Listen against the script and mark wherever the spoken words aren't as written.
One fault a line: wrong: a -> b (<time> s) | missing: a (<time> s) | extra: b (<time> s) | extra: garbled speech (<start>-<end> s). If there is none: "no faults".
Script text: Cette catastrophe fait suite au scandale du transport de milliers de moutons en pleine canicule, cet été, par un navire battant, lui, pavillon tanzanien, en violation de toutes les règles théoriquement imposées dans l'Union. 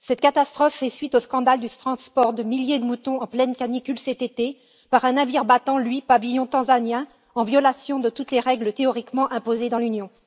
no faults